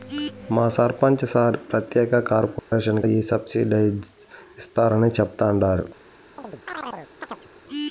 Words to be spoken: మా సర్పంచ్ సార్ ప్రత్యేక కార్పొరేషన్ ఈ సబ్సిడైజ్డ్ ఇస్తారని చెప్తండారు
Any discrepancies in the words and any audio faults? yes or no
yes